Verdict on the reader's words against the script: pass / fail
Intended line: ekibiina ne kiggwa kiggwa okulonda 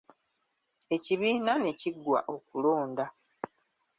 fail